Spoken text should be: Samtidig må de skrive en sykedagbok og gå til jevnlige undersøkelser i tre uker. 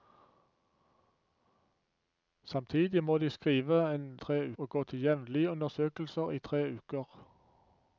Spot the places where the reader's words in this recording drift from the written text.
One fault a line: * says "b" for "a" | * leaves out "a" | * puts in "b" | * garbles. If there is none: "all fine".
* says "tre" for "sykedagbok"